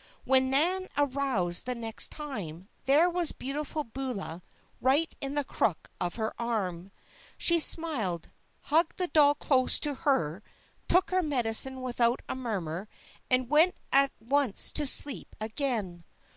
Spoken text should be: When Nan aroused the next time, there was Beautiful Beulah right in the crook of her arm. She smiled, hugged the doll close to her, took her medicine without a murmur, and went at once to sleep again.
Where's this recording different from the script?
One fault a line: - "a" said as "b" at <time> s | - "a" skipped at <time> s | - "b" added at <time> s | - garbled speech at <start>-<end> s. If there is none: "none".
none